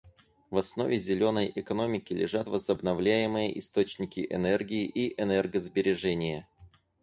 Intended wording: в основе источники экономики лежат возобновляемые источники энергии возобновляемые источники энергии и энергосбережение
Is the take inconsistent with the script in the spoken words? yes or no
yes